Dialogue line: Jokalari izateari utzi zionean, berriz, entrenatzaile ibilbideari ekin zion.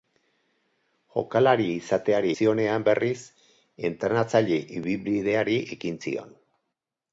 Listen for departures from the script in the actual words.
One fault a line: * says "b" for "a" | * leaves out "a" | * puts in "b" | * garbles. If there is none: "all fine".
* leaves out "utzi"